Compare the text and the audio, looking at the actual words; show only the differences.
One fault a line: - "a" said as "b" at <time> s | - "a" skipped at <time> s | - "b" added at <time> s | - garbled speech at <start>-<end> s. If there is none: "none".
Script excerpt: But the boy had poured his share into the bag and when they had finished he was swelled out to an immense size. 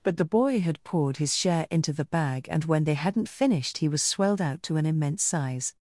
- "had" said as "hadn't" at 3.0 s